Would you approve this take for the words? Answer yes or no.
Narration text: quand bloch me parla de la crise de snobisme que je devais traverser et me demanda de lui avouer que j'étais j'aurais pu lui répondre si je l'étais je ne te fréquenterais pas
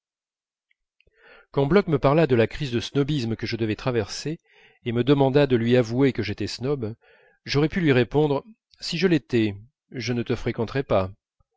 no